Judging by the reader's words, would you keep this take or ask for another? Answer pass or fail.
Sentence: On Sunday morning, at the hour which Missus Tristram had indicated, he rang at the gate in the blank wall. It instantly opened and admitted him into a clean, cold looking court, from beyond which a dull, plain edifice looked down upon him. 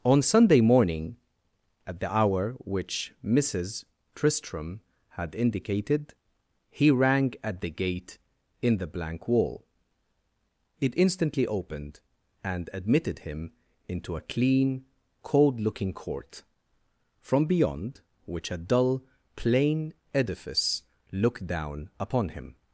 pass